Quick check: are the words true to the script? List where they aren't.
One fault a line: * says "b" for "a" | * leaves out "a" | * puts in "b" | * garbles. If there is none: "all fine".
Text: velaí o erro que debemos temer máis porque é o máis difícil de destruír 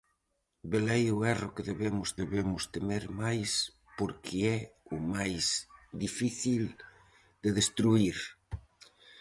* puts in "debemos"